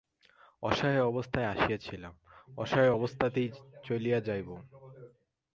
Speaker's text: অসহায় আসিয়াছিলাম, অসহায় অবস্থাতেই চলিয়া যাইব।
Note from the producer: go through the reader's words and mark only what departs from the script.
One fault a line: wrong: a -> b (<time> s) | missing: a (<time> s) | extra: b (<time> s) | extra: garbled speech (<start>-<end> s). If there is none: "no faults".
extra: অবস্থায় (1.0 s)